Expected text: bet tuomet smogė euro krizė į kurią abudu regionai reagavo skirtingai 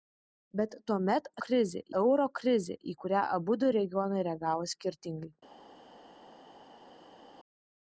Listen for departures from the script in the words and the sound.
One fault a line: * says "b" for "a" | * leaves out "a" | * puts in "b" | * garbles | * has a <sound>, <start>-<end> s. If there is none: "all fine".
* says "krizė" for "smogė"